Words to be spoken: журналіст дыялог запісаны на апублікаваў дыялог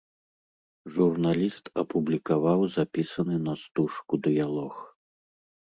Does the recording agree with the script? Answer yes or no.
no